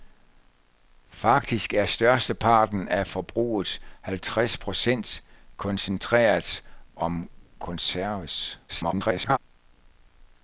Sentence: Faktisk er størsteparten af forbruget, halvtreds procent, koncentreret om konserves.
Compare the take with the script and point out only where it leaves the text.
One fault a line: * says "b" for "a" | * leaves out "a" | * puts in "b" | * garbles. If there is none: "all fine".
* garbles